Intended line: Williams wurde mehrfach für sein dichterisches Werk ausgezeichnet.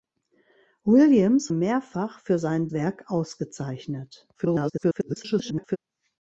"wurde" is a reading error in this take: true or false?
true